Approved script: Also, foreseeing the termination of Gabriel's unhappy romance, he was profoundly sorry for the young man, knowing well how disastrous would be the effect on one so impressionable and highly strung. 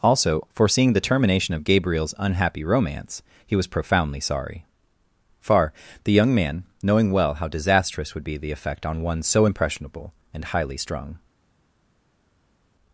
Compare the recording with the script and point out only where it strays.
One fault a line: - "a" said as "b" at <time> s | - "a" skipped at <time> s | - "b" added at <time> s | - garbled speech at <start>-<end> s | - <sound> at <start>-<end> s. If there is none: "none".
- "for" said as "far" at 5.4 s